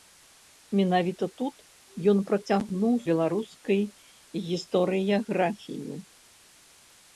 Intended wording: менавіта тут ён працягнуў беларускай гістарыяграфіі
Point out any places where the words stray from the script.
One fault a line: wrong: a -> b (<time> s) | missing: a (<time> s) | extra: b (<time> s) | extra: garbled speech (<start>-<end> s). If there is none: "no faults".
no faults